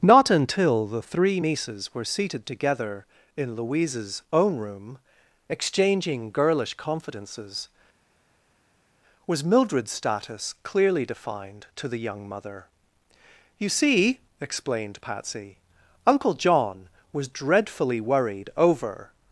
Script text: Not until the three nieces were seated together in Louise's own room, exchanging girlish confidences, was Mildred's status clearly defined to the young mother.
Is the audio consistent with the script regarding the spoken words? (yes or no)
no